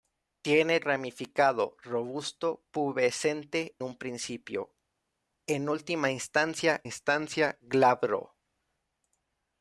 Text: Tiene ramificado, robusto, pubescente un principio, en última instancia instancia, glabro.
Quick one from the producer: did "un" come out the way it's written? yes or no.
yes